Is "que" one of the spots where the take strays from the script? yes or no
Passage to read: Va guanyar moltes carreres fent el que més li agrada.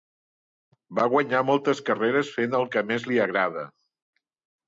no